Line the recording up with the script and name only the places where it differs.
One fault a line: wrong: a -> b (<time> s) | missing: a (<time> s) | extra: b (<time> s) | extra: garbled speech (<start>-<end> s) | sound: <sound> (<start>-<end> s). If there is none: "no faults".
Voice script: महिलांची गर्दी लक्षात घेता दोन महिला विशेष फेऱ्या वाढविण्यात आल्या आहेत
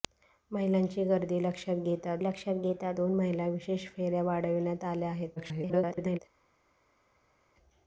extra: लक्षात घेता (2.2 s)
extra: garbled speech (5.4-6.2 s)